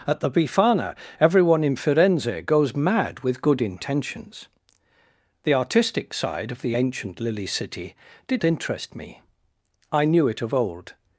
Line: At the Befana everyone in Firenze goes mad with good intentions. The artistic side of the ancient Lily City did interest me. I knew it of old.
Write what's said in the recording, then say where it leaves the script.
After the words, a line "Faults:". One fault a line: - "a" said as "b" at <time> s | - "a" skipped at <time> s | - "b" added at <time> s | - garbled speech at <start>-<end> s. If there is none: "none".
At the Befana everyone in Firenze goes mad with good intentions. The artistic side of the ancient Lily City did interest me. I knew it of old.
Faults:
none